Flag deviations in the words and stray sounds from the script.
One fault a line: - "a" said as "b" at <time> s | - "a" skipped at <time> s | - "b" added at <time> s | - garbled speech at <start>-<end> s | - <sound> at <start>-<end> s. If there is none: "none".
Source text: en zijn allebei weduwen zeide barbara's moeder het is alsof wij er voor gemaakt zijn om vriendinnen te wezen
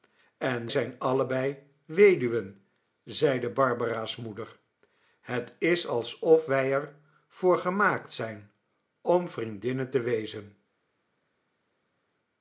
none